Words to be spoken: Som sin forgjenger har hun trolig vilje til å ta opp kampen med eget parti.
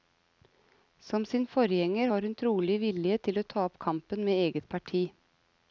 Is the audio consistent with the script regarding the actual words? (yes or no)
yes